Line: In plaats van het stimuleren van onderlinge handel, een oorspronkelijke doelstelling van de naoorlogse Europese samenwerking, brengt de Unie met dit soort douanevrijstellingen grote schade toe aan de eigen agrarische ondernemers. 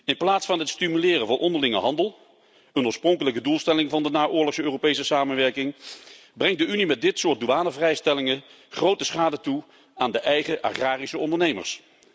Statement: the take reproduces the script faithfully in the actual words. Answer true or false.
true